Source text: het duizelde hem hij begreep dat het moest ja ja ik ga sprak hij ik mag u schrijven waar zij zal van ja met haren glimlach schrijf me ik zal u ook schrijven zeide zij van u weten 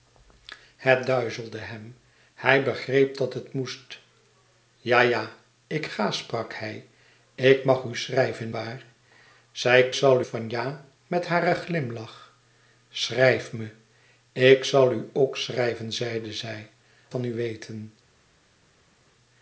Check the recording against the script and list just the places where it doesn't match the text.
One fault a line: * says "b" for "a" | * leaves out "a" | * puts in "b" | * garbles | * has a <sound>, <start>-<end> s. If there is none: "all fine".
all fine